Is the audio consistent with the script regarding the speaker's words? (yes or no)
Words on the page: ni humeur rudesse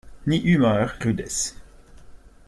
yes